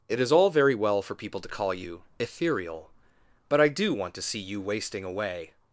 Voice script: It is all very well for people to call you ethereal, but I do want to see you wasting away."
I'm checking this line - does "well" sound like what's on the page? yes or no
yes